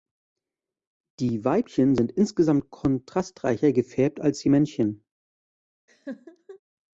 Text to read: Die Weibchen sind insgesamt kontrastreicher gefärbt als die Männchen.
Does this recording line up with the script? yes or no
yes